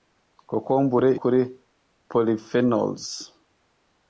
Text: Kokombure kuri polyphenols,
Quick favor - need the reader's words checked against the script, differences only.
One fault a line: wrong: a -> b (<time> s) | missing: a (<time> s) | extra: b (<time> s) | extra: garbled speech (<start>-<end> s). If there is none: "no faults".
no faults